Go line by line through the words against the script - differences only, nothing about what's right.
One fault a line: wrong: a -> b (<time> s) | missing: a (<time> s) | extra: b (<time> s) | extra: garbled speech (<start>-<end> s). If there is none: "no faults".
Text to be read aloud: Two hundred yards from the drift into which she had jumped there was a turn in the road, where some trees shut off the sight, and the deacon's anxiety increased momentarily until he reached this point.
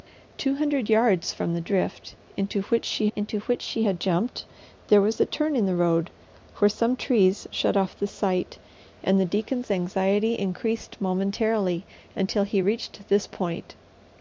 extra: into which she (3.1 s)